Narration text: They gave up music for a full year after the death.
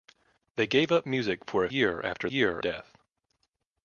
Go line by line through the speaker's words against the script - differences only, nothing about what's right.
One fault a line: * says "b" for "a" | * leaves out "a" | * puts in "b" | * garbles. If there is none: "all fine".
* leaves out "full"
* says "year" for "the"